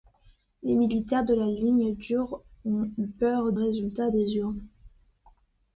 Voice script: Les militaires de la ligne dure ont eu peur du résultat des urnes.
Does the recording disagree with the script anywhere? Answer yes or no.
yes